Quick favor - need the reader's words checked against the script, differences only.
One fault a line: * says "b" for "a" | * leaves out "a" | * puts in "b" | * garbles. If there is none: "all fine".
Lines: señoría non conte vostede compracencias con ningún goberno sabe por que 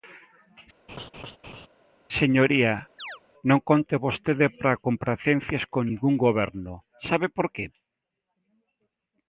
* puts in "para"